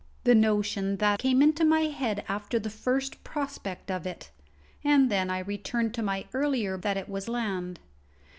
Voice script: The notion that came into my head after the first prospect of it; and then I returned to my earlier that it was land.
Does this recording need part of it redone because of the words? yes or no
no